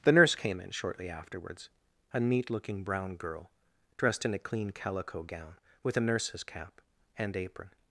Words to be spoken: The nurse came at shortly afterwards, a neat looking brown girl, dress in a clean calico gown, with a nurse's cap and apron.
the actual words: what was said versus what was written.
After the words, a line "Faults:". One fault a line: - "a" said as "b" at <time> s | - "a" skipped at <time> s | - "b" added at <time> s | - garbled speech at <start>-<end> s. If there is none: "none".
The nurse came in shortly afterwards, a neat looking brown girl, dressed in a clean calico gown, with a nurse's cap and apron.
Faults:
- "at" said as "in" at 0.6 s
- "dress" said as "dressed" at 4.0 s